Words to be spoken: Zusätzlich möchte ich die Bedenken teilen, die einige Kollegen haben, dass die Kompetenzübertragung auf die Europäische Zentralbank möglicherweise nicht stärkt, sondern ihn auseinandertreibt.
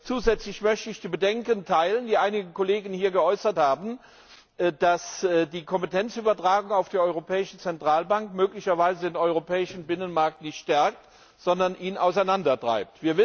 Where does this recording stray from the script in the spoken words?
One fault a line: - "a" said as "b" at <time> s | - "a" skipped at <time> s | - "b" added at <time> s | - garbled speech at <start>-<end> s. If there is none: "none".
- "hier geäußert" added at 2.9 s
- "den europäischen Binnenmarkt" added at 9.1 s